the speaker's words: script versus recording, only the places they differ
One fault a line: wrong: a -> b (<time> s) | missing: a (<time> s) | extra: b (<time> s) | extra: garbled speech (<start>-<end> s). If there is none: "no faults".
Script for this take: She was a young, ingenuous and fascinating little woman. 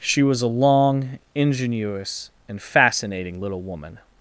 wrong: young -> long (0.5 s)